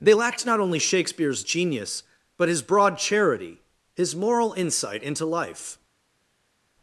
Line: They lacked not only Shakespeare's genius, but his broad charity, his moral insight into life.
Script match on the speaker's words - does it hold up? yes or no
yes